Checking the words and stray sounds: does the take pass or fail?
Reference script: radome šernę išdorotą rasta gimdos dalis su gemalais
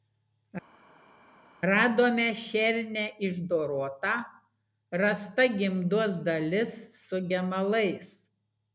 pass